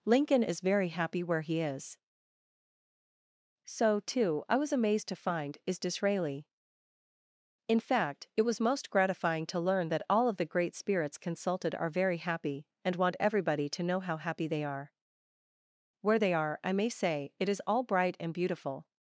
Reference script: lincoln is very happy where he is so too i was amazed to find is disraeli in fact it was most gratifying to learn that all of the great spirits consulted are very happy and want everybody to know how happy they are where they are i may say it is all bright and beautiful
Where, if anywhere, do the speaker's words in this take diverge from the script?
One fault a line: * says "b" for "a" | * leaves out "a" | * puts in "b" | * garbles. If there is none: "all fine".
all fine